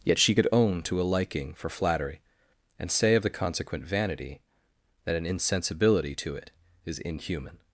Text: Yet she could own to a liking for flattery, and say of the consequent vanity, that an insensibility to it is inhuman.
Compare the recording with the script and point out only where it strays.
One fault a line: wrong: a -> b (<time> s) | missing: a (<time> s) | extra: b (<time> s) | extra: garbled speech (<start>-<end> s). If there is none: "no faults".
no faults